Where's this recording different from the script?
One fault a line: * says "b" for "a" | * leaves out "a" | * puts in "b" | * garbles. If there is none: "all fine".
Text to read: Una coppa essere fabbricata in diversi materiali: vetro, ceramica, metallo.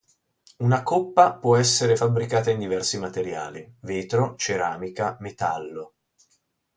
* puts in "può"